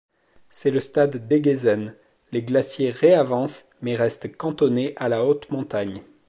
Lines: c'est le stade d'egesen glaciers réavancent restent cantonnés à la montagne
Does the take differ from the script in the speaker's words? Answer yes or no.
yes